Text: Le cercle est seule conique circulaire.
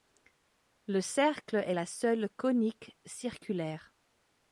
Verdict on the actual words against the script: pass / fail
fail